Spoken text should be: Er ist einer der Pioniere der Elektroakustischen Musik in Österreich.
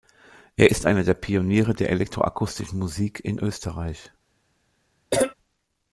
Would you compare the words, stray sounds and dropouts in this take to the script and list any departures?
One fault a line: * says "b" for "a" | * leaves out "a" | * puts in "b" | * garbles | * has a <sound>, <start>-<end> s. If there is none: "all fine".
* has a cough, 5.1-5.3 s